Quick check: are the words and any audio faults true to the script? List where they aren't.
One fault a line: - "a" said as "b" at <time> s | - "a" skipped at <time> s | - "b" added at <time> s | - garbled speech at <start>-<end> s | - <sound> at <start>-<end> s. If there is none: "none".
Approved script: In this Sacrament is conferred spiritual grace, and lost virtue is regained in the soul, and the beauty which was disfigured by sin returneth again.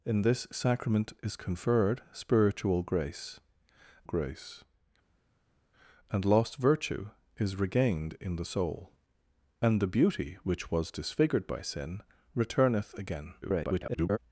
- "grace" added at 4.0 s
- garbled speech at 13.4-14.2 s